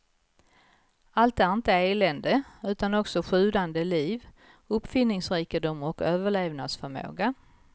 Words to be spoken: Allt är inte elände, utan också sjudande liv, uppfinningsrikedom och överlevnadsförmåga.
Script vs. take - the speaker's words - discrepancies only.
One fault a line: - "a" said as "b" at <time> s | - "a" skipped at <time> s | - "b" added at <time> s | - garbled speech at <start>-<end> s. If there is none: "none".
none